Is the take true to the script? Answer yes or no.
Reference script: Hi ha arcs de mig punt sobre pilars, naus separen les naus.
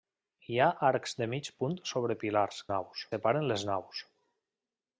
yes